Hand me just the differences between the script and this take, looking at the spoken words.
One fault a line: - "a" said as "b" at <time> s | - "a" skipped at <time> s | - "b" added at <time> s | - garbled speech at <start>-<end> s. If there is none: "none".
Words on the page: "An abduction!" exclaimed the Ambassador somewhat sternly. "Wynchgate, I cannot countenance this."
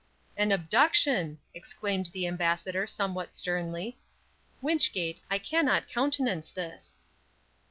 none